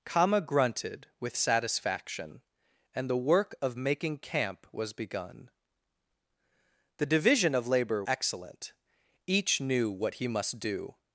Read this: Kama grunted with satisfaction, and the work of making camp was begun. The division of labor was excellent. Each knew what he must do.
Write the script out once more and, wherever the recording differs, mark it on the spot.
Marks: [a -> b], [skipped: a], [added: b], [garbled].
Kama grunted with satisfaction, and the work of making camp was begun. The division of labor [skipped: was] excellent. Each knew what he must do.